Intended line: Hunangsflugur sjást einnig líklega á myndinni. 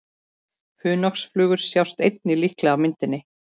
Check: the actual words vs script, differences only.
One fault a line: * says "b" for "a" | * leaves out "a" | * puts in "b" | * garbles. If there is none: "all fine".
all fine